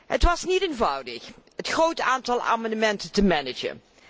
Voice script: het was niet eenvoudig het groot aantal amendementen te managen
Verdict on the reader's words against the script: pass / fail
pass